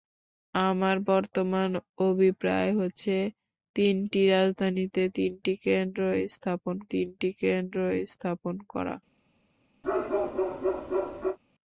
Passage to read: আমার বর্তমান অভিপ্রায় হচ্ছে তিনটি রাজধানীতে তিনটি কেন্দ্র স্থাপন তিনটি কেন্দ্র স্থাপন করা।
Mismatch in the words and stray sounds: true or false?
true